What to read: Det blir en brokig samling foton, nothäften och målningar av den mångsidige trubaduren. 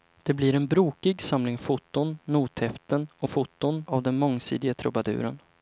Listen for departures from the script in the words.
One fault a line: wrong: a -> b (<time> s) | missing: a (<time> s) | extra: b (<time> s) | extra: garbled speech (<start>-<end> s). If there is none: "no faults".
wrong: målningar -> foton (3.2 s)